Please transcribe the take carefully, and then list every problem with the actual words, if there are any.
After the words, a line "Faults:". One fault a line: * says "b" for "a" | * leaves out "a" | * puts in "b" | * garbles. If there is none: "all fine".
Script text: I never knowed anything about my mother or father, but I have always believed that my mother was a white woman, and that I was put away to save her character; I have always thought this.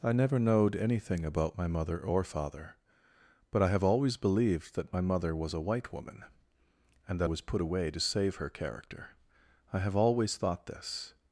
I never knowed anything about my mother or father, but I have always believed that my mother was a white woman, and that was put away to save her character; I have always thought this.
Faults:
* leaves out "I"